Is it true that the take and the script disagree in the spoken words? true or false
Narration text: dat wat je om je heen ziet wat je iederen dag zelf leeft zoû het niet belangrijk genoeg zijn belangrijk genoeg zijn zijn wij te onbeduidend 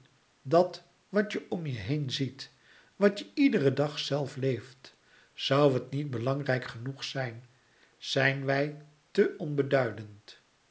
true